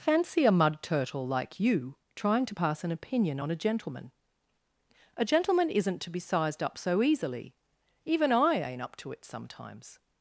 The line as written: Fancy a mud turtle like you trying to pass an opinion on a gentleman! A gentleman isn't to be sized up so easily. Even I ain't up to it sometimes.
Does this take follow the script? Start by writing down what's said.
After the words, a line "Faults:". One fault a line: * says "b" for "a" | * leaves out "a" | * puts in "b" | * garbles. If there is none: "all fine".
Fancy a mud turtle like you trying to pass an opinion on a gentleman! A gentleman isn't to be sized up so easily. Even I ain't up to it sometimes.
Faults:
all fine